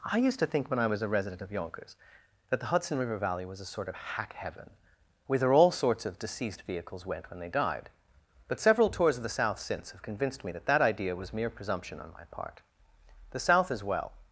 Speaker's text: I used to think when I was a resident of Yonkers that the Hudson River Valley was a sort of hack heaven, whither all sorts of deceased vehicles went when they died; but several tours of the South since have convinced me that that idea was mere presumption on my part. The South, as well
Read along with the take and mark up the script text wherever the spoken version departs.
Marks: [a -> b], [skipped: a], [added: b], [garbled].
I used to think when I was a resident of Yonkers that the Hudson River Valley was a sort of hack heaven, whither all sorts of deceased vehicles went when they died; but several tours of the South since have convinced me that that idea was mere presumption on my part. The South, as well